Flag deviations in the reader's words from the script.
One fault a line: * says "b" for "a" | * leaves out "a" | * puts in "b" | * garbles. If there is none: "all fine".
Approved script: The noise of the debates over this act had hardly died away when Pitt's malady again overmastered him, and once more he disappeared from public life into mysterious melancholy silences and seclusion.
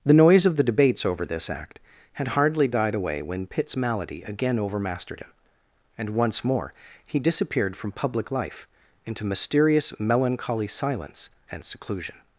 * says "silence" for "silences"